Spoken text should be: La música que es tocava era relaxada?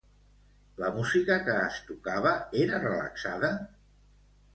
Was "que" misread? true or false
false